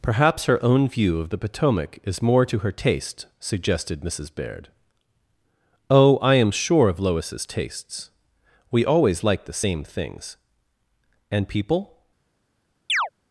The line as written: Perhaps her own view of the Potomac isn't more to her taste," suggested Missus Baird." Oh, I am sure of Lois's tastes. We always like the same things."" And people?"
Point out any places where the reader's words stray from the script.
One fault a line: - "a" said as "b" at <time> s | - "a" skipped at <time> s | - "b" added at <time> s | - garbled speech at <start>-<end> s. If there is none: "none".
- "isn't" said as "is" at 2.0 s